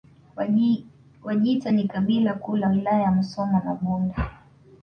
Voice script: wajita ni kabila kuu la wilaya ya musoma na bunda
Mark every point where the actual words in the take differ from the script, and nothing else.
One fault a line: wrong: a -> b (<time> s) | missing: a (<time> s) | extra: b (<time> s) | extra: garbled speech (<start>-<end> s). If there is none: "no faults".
no faults